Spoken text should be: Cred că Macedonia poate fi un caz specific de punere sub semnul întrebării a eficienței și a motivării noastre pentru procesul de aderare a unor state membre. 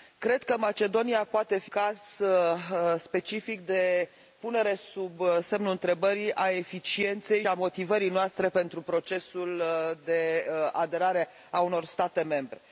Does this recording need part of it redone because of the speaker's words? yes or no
yes